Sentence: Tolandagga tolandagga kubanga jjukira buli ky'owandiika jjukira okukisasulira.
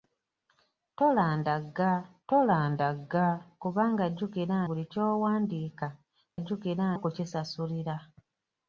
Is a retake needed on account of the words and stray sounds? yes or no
no